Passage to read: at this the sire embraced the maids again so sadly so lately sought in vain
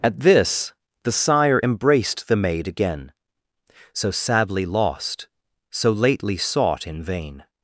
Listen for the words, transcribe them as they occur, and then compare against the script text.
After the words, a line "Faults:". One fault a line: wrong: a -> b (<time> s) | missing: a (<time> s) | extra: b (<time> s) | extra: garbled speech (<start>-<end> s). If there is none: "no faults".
at this the sire embraced the maid again so sadly lost so lately sought in vain
Faults:
wrong: maids -> maid (2.4 s)
extra: lost (4.7 s)